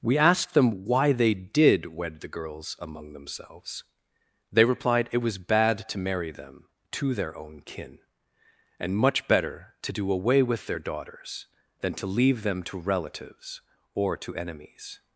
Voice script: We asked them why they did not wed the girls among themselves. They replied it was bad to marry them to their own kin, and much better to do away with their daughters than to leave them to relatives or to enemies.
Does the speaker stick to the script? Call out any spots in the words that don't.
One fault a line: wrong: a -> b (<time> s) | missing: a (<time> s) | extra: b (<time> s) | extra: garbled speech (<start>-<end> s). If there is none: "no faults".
missing: not (1.9 s)